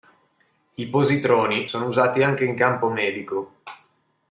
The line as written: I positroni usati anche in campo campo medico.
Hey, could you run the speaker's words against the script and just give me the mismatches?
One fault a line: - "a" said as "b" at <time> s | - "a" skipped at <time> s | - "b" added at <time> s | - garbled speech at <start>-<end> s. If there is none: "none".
- "sono" added at 1.7 s
- "campo" skipped at 2.9 s